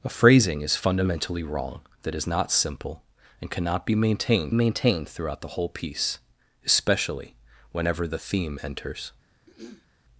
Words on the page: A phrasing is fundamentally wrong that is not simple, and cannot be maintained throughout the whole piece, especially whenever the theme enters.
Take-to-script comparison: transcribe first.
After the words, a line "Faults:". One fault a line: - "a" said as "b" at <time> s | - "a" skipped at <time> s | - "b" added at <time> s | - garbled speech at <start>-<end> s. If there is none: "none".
A phrasing is fundamentally wrong that is not simple, and cannot be maintained maintained throughout the whole piece, especially whenever the theme enters.
Faults:
- "maintained" added at 4.5 s